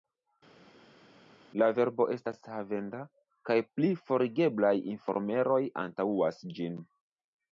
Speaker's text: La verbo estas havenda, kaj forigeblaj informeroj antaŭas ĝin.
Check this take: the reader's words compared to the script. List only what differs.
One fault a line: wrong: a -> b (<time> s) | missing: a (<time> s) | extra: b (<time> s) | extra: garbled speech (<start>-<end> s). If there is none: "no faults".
extra: pli (3.7 s)